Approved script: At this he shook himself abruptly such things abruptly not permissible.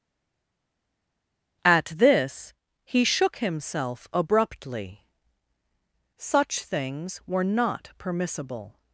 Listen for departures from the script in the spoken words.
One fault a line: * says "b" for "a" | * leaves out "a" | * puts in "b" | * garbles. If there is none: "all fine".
* says "were" for "abruptly"